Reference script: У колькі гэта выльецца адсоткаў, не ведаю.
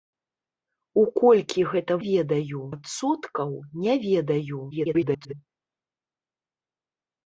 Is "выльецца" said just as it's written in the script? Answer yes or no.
no